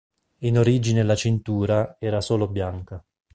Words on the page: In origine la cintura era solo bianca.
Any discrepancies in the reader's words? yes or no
no